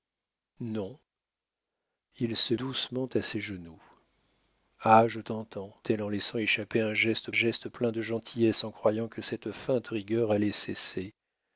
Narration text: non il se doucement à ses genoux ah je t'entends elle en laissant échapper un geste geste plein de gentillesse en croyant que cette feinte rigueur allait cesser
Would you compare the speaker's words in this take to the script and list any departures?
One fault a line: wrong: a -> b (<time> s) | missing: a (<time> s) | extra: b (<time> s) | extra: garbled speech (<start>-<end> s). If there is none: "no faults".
no faults